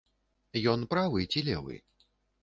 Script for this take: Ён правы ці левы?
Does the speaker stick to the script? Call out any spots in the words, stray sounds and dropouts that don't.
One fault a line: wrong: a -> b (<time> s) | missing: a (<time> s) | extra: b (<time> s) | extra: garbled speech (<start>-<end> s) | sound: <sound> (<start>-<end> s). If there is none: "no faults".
no faults